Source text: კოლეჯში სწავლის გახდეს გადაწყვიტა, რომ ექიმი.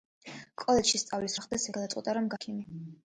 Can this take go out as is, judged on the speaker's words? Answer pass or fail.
pass